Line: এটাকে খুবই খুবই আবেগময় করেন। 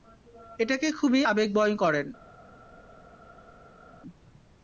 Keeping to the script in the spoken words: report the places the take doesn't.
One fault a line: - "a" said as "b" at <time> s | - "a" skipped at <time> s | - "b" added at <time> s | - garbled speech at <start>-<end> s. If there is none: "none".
- "খুবই" skipped at 1.2 s